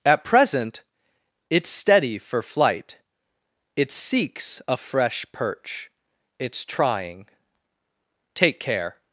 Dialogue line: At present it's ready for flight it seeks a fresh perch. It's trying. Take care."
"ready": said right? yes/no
no